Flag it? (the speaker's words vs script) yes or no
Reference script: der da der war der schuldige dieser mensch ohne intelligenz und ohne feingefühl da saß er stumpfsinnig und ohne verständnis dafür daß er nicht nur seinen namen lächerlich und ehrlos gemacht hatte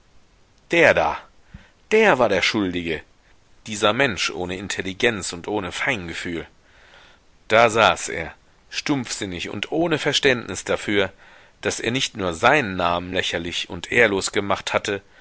no